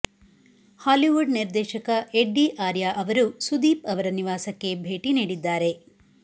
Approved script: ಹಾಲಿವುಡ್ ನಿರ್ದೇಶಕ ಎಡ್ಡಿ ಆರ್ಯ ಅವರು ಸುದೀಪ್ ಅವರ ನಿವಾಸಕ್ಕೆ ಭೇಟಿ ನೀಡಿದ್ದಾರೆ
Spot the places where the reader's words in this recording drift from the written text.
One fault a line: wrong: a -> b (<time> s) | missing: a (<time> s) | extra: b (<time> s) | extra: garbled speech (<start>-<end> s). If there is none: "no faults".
no faults